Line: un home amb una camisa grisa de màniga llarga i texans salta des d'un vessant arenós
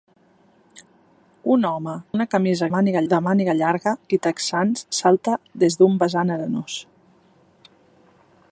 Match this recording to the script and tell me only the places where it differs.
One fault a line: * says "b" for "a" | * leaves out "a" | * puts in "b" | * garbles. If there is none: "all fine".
* leaves out "amb"
* says "màniga" for "grisa"